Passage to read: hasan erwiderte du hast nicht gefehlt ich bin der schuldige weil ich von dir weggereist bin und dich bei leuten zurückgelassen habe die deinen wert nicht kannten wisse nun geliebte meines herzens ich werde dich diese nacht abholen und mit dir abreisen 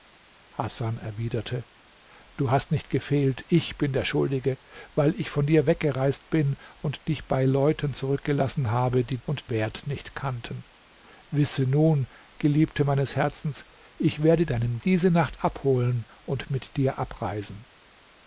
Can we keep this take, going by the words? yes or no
no